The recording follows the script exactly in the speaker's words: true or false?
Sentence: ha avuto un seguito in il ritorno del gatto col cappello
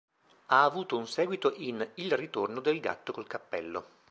true